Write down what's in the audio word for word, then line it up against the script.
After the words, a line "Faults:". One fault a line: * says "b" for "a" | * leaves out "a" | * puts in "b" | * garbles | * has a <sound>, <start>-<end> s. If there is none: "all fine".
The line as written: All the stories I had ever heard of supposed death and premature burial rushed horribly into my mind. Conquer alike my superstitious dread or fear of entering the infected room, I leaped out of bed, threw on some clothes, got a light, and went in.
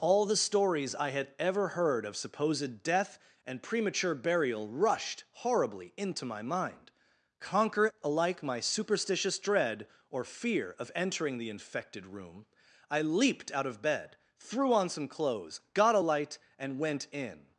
All the stories I had ever heard of supposed death and premature burial rushed horribly into my mind. Conquer alike my superstitious dread or fear of entering the infected room, I leaped out of bed, threw on some clothes, got a light, and went in.
Faults:
all fine